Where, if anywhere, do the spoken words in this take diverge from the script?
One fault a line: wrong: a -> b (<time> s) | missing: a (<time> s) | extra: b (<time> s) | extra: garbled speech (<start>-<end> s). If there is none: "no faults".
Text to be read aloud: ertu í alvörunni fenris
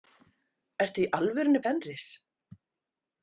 no faults